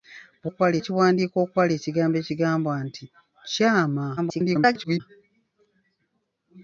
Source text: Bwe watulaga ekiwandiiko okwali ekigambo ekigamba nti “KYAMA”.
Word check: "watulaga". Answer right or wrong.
wrong